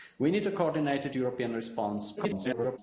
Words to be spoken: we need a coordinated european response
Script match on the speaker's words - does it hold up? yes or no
no